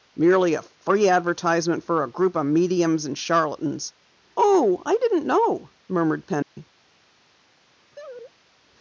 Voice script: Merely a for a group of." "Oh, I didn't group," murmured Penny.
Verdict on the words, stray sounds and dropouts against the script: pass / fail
fail